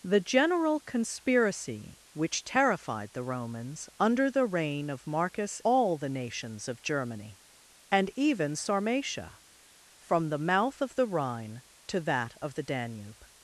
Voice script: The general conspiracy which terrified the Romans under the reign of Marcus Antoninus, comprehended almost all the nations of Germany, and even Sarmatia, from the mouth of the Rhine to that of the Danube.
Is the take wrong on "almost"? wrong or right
wrong